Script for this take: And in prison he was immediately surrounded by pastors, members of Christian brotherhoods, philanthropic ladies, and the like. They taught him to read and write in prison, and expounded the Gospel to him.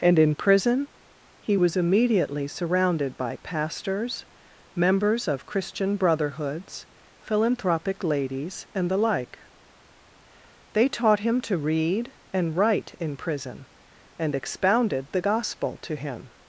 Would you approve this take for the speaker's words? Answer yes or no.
yes